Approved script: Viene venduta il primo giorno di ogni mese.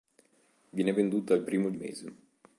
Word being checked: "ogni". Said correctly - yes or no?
no